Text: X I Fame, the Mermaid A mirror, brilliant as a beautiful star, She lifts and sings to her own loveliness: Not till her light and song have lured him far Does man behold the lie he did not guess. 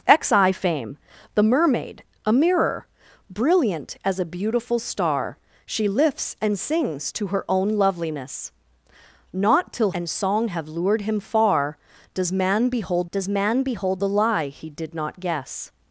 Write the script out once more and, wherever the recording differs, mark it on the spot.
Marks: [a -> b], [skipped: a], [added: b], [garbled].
X I Fame, the Mermaid A mirror, brilliant as a beautiful star, She lifts and sings to her own loveliness: Not till [skipped: her light] and song have lured him far Does man behold [added: Does man behold] the lie he did not guess.